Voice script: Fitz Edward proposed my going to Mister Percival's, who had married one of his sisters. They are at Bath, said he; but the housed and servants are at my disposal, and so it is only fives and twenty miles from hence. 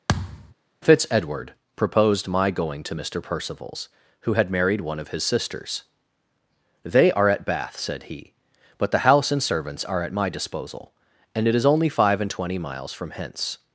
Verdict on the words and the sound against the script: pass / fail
fail